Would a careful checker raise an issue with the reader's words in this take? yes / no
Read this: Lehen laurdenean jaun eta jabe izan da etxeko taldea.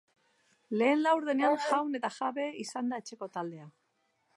no